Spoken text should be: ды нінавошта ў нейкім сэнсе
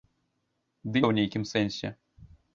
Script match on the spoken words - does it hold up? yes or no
no